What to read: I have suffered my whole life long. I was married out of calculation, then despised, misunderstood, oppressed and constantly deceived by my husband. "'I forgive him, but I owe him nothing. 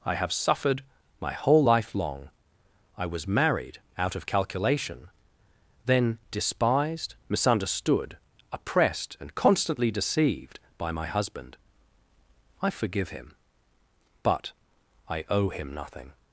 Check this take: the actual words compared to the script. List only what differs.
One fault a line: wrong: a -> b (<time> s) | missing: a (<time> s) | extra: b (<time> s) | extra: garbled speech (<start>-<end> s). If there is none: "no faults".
no faults